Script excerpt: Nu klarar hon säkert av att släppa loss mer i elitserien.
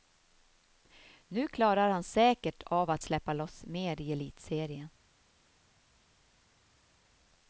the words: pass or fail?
fail